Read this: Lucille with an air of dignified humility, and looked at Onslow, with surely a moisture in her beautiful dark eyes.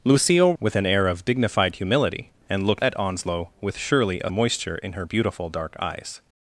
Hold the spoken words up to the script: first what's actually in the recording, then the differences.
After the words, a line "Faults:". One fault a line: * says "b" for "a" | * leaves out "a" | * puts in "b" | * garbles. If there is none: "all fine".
Lucille with an air of dignified humility, and looked at Onslow, with surely a moisture in her beautiful dark eyes.
Faults:
all fine